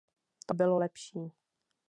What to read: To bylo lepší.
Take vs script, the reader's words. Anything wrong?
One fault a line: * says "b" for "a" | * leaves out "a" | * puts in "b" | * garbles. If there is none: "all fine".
all fine